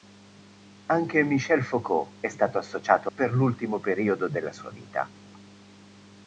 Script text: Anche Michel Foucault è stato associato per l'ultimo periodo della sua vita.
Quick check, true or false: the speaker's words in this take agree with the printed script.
true